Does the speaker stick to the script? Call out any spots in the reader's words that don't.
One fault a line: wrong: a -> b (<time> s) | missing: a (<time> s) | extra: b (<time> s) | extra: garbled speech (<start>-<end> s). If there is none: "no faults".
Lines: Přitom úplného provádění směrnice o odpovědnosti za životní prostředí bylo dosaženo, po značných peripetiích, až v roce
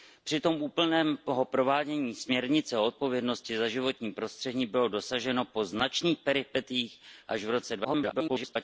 extra: garbled speech (7.8-8.6 s)